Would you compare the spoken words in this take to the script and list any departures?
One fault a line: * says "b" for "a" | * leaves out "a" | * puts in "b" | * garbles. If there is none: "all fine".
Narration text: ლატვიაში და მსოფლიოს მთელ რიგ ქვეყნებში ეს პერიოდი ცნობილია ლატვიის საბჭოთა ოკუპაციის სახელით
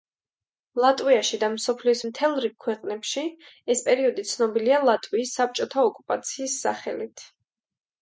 all fine